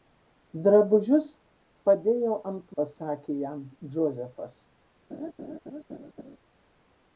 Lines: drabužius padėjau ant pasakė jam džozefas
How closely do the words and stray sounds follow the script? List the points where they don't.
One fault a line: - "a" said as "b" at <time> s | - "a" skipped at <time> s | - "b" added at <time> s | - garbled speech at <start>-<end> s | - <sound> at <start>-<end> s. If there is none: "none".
- laugh at 5.1-6.4 s